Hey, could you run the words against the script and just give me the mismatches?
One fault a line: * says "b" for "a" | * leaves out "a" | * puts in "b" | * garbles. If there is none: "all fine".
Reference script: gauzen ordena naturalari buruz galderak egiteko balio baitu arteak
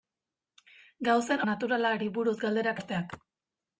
* leaves out "ordena"
* leaves out "egiteko balio baitu"